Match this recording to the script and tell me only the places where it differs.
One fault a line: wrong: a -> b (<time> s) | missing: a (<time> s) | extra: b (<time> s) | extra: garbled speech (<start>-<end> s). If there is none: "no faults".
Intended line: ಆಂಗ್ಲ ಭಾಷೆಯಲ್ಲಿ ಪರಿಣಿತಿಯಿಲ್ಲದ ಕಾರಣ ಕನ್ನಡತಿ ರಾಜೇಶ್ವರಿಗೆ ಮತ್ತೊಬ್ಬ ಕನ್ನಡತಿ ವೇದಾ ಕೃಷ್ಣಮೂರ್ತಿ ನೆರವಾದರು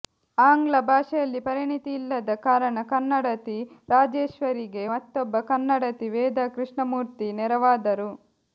no faults